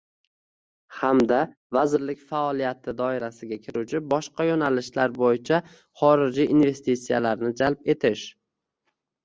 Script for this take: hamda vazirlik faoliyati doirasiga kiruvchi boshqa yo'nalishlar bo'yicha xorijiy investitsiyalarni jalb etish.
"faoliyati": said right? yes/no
yes